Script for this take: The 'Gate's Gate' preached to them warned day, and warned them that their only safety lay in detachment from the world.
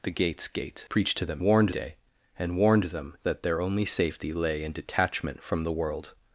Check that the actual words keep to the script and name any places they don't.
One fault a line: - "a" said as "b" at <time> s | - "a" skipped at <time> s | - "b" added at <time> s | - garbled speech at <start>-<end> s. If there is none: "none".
none